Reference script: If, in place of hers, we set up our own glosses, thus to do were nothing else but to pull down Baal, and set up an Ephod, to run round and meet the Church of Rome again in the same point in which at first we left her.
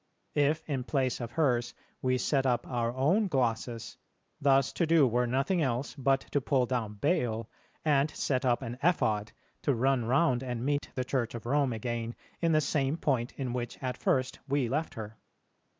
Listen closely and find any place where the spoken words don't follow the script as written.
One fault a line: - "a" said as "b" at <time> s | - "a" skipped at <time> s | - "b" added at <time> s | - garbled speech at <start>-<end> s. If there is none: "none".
none